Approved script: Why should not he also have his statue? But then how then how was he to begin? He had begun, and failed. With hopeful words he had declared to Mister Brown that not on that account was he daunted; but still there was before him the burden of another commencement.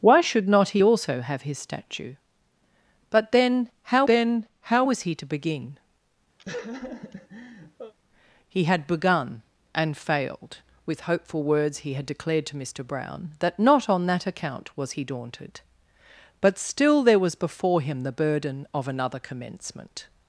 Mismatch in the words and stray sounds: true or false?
true